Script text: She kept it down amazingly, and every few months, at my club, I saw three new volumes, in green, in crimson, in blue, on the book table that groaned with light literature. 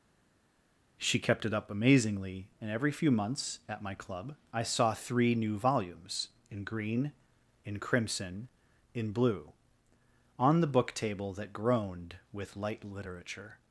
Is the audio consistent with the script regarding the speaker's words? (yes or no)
no